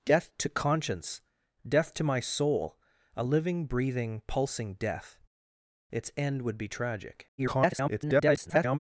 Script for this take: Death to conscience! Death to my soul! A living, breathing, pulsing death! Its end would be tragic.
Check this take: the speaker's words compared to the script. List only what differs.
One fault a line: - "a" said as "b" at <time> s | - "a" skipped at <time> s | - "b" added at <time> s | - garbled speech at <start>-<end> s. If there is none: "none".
- garbled speech at 7.4-8.8 s